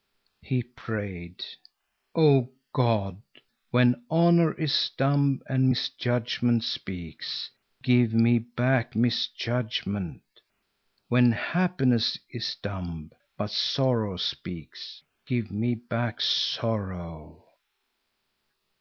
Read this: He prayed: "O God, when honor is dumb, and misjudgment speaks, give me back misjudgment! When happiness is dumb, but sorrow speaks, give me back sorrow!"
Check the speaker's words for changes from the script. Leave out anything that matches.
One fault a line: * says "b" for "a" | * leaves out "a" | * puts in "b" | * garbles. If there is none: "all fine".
all fine